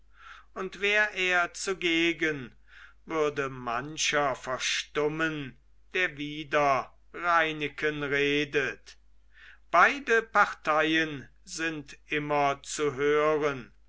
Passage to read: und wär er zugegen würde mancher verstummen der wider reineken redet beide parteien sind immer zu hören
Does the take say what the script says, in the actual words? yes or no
yes